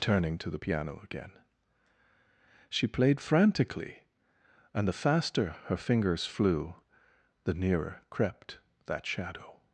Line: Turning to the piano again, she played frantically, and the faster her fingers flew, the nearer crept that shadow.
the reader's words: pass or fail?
pass